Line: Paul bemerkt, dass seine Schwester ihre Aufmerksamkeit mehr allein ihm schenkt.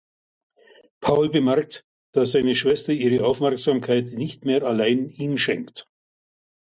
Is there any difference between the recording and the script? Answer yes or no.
yes